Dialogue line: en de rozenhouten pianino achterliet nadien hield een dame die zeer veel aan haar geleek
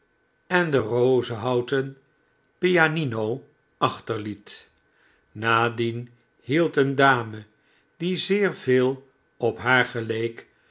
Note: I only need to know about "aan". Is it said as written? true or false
false